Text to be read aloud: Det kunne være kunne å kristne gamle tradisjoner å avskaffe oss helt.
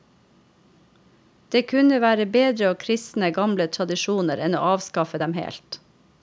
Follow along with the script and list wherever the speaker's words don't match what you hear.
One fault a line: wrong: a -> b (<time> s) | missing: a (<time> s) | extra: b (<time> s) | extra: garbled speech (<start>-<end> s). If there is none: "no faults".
wrong: kunne -> bedre (2.4 s)
extra: enn (4.5 s)
wrong: oss -> dem (5.2 s)